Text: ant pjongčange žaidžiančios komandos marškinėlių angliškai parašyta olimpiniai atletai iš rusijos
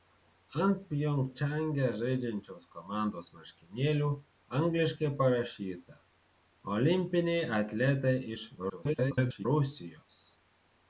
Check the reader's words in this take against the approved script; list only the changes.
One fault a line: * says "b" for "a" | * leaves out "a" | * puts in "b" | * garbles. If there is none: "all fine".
* garbles